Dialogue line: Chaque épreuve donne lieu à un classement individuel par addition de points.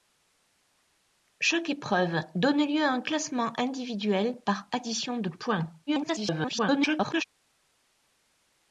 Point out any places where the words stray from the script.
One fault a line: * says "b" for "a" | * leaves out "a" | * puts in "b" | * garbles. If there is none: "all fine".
* garbles